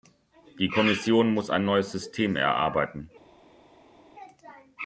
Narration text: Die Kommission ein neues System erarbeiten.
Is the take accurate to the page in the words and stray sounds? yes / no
no